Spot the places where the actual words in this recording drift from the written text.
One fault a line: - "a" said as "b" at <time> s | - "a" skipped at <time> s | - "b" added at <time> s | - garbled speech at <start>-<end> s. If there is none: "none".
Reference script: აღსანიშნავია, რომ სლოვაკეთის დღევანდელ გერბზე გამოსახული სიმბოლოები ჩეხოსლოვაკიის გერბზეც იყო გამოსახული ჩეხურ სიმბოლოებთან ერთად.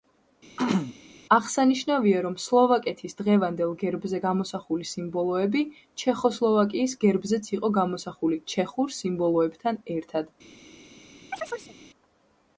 none